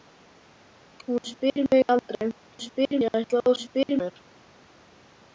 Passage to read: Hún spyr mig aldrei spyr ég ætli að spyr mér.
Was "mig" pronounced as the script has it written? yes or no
yes